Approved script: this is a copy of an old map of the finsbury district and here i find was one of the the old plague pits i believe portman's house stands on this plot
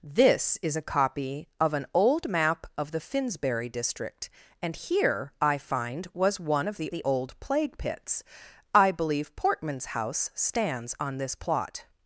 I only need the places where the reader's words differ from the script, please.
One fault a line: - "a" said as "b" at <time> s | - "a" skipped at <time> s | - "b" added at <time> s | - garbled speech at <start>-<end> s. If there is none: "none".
none